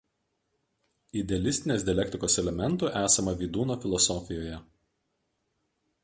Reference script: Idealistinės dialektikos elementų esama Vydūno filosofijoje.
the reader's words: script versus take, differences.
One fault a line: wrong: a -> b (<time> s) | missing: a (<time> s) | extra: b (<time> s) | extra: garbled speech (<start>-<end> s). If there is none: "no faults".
no faults